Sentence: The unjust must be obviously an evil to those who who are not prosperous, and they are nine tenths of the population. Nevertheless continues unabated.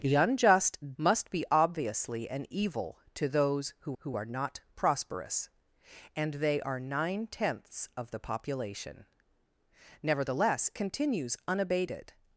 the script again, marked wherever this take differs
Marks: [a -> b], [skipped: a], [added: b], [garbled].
The unjust must be obviously an evil to those who who are not prosperous, and they are nine tenths of the population. Nevertheless continues unabated.